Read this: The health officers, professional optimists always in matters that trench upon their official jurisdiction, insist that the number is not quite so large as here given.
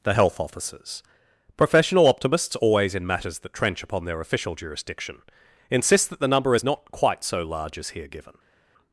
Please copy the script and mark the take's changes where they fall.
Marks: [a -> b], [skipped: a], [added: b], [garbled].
The health officers, professional optimists always in matters that trench upon their official jurisdiction, insist that the number is not quite so large as here given.